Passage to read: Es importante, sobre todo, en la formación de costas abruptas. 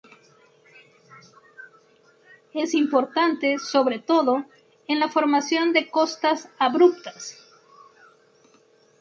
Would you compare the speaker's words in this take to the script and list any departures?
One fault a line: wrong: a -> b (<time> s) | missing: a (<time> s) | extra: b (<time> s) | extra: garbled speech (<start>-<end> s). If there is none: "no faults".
no faults